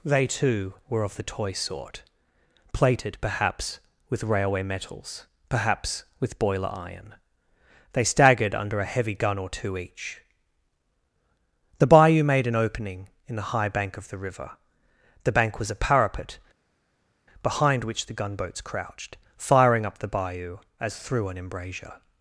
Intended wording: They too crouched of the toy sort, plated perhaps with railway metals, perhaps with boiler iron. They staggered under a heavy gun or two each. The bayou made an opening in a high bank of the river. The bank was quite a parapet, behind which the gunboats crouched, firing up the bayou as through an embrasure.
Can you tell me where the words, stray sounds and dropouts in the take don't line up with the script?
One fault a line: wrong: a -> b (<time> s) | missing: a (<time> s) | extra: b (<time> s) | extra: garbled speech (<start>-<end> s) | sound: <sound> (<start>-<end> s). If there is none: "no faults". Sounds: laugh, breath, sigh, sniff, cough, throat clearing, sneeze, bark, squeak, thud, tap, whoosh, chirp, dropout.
wrong: crouched -> were (0.9 s)
wrong: a -> the (13.3 s)
missing: quite (15.7 s)